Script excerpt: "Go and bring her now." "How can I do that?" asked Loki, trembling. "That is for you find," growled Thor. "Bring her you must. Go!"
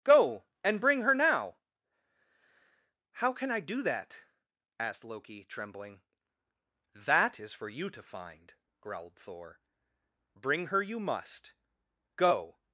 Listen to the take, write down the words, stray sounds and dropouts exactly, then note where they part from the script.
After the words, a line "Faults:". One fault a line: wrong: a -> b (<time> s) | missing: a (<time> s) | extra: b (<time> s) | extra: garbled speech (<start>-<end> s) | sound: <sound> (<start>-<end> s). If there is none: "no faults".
"Go and bring her now." "How can I do that?" asked Loki, trembling. "That is for you to find," growled Thor. "Bring her you must. Go!"
Faults:
extra: to (7.9 s)